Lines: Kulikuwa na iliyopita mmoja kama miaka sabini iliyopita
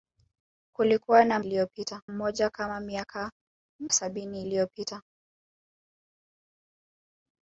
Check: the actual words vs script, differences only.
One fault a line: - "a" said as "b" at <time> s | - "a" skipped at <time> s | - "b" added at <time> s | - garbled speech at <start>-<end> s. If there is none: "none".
none